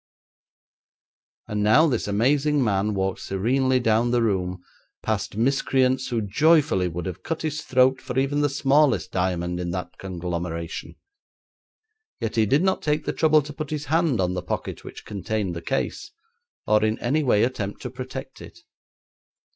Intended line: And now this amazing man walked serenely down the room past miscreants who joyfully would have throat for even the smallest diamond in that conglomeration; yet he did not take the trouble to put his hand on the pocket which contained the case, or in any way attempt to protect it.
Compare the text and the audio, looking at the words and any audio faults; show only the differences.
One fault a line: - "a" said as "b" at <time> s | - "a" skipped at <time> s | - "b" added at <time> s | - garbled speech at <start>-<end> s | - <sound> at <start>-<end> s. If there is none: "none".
- "cut his" added at 7.2 s